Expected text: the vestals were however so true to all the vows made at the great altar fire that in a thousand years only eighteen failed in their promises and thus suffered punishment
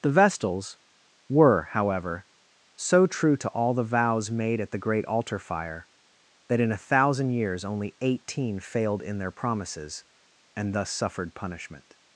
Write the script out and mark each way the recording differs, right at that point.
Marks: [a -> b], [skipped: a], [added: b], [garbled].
the vestals were however so true to all the vows made at the great altar fire that in a thousand years only eighteen failed in their promises and thus suffered punishment